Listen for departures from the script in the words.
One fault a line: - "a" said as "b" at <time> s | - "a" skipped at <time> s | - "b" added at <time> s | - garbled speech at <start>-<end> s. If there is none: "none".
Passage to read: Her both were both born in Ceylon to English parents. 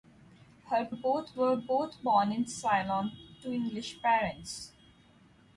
none